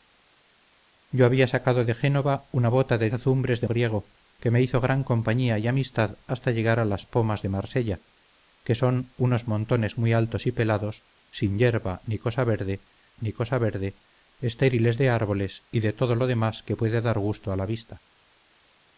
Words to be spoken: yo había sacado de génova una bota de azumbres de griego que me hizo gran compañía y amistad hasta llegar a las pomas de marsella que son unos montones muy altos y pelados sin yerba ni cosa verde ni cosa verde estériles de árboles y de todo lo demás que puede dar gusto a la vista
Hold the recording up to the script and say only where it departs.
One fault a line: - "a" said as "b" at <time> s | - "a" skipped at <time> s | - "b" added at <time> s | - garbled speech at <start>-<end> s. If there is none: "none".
none